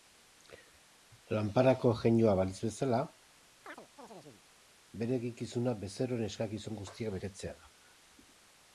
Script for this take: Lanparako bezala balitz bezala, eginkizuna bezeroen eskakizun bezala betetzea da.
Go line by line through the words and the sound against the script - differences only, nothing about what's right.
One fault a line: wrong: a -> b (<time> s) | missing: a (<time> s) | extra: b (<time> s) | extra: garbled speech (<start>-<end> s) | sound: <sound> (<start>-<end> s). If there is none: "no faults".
wrong: bezala -> jeinua (2.0 s)
sound: chirp (3.6-4.4 s)
extra: bere (5.0 s)
wrong: bezala -> guztiak (6.8 s)